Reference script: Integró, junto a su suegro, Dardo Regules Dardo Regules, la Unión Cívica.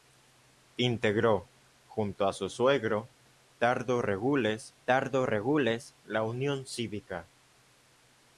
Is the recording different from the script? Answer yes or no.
no